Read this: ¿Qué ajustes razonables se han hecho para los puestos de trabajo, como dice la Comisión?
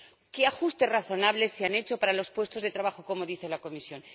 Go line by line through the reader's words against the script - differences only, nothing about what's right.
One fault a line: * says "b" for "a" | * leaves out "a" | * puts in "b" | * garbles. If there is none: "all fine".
all fine